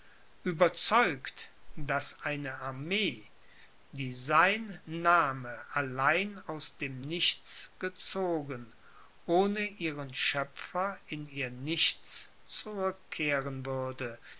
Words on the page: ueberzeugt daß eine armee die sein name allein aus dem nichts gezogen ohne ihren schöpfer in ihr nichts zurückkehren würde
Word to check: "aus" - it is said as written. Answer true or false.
true